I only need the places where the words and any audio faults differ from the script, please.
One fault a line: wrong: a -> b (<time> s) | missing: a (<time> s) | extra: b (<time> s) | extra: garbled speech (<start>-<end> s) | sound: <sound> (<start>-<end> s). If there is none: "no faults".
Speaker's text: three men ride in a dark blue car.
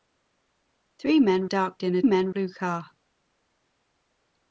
wrong: ride -> dark (1.5 s)
wrong: dark -> men (2.0 s)